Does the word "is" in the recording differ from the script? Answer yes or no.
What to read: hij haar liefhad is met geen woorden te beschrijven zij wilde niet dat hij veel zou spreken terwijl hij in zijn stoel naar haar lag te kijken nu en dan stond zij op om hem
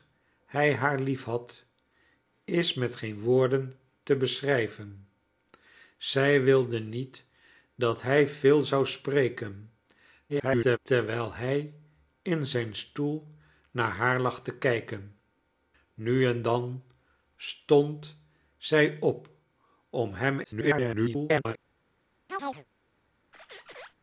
no